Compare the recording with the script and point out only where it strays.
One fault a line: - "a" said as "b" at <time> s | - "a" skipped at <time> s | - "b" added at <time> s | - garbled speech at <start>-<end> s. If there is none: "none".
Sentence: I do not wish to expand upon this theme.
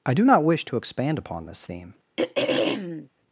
none